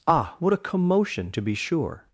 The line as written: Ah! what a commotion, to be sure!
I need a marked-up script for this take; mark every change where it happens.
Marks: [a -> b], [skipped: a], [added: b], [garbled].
Ah! what a commotion, to be sure!